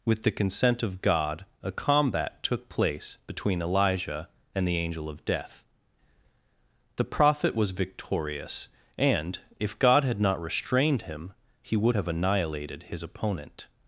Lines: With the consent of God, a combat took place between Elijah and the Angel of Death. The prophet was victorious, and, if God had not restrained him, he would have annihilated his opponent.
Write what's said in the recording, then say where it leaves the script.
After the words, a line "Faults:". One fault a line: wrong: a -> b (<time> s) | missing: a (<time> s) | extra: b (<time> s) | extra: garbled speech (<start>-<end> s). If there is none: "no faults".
With the consent of God, a combat took place between Elijah and the Angel of Death. The prophet was victorious, and, if God had not restrained him, he would have annihilated his opponent.
Faults:
no faults